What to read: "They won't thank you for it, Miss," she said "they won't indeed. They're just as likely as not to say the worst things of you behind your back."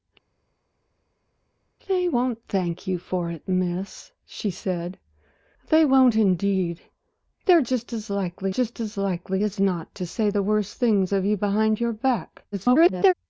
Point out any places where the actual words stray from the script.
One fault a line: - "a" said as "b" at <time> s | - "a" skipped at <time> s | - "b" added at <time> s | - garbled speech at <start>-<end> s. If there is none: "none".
- "just as likely" added at 8.5 s
- garbled speech at 12.5-13.1 s